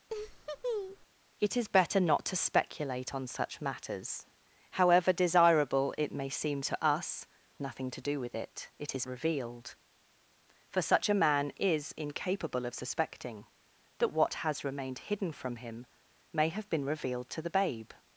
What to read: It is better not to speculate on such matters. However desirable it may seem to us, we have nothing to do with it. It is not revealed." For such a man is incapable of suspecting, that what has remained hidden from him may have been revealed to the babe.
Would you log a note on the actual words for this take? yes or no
yes